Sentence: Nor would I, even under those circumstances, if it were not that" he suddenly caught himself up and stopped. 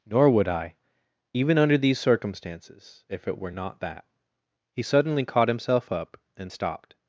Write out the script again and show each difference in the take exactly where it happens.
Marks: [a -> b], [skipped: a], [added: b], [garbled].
Nor would I, even under [those -> these] circumstances, if it were not that" he suddenly caught himself up and stopped.